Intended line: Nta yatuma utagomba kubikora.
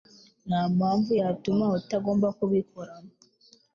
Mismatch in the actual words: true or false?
true